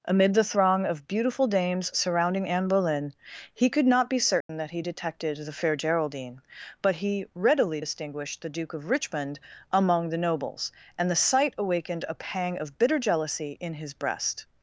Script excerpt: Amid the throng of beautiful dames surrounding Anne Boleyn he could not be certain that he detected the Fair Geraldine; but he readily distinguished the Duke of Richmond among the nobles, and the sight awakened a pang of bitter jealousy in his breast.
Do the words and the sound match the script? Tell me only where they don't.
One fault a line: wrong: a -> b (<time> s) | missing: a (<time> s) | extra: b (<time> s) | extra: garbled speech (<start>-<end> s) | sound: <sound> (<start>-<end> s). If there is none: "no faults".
sound: dropout (4.4-4.5 s)